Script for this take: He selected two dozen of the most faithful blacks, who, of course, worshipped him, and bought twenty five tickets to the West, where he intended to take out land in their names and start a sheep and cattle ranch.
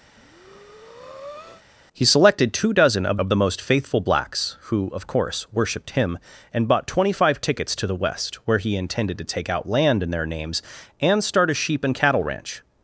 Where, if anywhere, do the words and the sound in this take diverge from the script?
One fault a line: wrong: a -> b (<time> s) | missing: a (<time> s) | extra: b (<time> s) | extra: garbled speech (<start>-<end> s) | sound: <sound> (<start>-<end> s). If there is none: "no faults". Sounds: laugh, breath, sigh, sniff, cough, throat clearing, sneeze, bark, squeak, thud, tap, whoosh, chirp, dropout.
sound: breath (0.1-1.6 s)
extra: of (3.1 s)